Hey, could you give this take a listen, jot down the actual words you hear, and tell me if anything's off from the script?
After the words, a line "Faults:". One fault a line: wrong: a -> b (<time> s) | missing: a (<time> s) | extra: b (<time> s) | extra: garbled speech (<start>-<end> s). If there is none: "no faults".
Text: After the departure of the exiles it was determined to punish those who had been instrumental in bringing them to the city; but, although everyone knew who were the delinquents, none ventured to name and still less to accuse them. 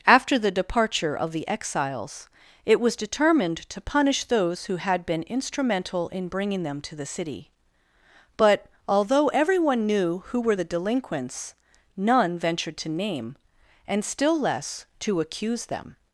After the departure of the exiles it was determined to punish those who had been instrumental in bringing them to the city; but, although everyone knew who were the delinquents, none ventured to name and still less to accuse them.
Faults:
no faults